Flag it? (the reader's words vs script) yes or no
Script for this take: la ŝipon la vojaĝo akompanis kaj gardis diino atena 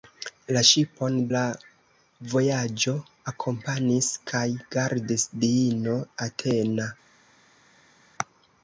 no